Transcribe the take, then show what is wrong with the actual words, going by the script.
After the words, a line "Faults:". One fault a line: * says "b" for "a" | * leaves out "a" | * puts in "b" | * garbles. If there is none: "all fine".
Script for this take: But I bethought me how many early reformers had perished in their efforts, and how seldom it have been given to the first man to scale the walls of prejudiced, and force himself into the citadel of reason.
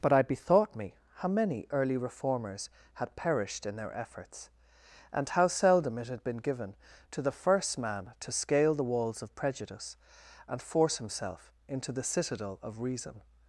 But I bethought me how many early reformers had perished in their efforts, and how seldom it had been given to the first man to scale the walls of prejudice, and force himself into the citadel of reason.
Faults:
* says "had" for "have"
* says "prejudice" for "prejudiced"